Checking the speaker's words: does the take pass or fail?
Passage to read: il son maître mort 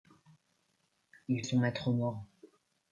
pass